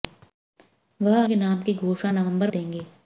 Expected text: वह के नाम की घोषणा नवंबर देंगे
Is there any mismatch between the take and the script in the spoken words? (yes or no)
no